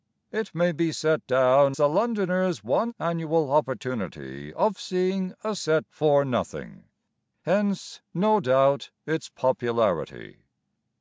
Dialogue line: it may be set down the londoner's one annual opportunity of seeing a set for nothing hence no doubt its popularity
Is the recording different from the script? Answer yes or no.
no